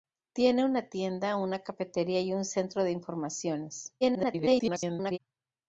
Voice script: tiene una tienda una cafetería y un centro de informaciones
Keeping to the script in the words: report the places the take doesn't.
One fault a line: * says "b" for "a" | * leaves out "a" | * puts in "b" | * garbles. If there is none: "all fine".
* garbles